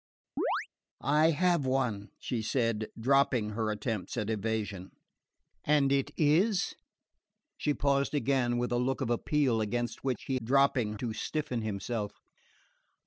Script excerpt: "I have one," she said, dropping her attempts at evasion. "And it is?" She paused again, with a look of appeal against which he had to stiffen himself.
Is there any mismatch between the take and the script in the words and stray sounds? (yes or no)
yes